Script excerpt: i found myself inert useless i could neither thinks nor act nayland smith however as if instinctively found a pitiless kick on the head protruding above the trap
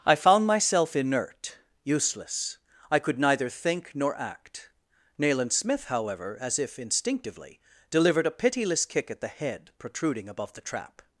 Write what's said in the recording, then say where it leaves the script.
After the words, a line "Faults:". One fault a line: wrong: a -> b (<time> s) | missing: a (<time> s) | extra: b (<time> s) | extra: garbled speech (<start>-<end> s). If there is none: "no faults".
i found myself inert useless i could neither think nor act nayland smith however as if instinctively delivered a pitiless kick at the head protruding above the trap
Faults:
wrong: thinks -> think (3.5 s)
wrong: found -> delivered (7.9 s)
wrong: on -> at (9.1 s)